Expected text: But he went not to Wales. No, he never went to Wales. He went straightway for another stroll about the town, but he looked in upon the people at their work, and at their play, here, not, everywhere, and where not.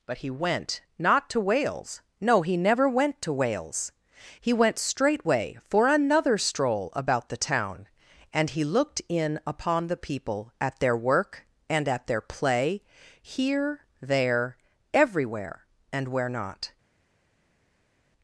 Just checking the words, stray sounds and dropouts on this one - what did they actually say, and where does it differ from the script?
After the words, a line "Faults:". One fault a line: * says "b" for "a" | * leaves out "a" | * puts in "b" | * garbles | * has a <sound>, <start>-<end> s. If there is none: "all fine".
But he went not to Wales. No, he never went to Wales. He went straightway for another stroll about the town, and he looked in upon the people at their work, and at their play, here, there, everywhere, and where not.
Faults:
* says "and" for "but"
* says "there" for "not"